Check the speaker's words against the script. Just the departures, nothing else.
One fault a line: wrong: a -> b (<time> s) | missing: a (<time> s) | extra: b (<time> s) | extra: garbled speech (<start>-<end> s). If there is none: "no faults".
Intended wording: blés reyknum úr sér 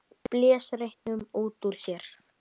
extra: út (1.4 s)